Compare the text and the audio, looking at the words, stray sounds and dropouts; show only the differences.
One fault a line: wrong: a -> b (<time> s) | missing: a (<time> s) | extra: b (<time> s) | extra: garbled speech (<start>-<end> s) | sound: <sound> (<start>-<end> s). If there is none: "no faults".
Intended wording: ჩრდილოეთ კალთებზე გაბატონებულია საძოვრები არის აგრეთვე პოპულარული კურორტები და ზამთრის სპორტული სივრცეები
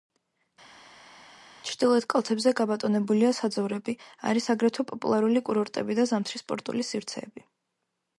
no faults